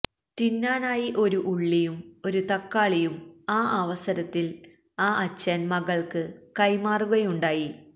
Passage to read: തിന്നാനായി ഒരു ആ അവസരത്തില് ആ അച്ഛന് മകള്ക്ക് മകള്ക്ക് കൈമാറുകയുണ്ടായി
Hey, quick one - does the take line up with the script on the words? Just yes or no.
no